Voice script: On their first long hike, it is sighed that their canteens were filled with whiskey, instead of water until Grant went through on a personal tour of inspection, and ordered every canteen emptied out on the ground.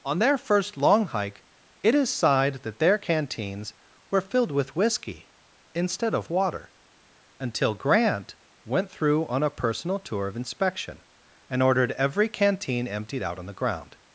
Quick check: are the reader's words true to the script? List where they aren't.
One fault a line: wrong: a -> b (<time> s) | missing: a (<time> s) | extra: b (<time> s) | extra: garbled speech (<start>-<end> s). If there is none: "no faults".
no faults